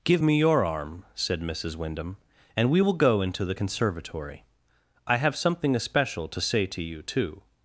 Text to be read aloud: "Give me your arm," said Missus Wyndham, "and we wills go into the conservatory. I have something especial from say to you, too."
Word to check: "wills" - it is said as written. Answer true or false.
false